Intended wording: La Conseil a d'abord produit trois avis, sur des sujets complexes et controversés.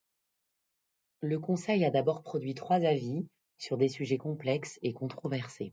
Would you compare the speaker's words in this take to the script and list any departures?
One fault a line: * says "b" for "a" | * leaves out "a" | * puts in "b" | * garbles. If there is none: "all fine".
* says "Le" for "La"